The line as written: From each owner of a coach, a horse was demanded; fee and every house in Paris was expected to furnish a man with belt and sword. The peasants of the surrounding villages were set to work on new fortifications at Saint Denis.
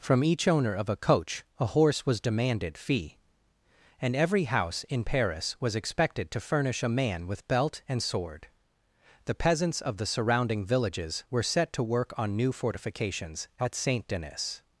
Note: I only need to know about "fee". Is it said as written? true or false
true